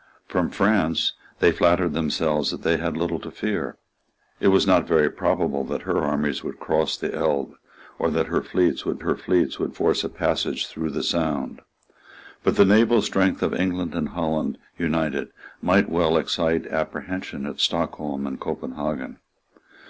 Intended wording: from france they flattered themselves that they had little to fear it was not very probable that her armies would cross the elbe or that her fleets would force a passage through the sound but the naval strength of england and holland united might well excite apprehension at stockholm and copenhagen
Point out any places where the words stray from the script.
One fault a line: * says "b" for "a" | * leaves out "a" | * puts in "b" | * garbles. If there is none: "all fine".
* puts in "her fleets would"